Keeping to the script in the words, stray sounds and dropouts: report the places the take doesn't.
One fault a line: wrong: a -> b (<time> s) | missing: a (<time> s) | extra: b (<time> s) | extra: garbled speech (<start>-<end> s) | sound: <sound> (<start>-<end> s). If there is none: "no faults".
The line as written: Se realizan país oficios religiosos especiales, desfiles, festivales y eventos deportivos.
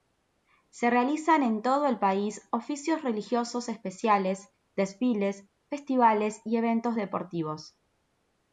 extra: en todo el (1.4 s)